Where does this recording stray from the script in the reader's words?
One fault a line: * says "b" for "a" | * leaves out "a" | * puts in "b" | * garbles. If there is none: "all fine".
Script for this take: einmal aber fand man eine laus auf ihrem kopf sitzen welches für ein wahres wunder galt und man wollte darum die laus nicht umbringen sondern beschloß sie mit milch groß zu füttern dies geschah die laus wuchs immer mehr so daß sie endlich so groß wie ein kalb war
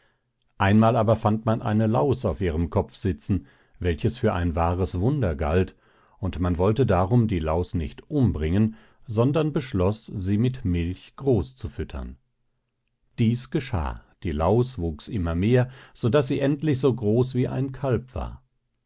all fine